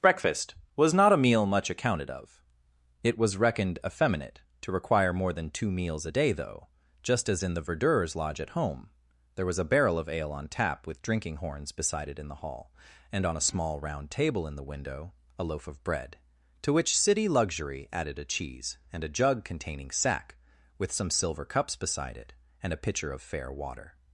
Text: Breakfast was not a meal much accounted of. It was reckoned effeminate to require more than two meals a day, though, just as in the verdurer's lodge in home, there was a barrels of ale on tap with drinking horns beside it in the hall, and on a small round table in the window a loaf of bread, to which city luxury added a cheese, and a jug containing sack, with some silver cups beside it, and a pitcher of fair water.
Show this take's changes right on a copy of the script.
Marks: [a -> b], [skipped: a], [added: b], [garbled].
Breakfast was not a meal much accounted of. It was reckoned effeminate to require more than two meals a day, though, just as in the verdurer's lodge [in -> at] home, there was a [barrels -> barrel] of ale on tap with drinking horns beside it in the hall, and on a small round table in the window a loaf of bread, to which city luxury added a cheese, and a jug containing sack, with some silver cups beside it, and a pitcher of fair water.